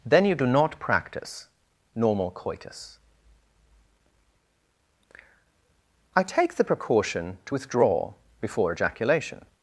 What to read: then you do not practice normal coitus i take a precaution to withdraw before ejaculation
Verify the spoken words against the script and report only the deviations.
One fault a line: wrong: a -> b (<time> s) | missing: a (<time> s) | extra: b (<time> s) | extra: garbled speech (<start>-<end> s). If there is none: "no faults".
wrong: a -> the (6.5 s)